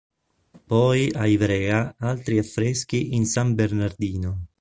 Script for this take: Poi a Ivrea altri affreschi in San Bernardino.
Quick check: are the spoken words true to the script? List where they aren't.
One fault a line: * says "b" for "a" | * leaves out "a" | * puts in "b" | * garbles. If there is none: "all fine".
all fine